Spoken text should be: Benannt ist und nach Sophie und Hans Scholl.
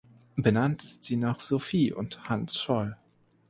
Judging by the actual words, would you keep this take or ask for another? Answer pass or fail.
fail